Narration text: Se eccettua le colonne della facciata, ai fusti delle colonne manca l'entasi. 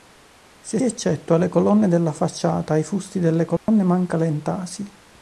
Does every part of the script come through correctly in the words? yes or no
yes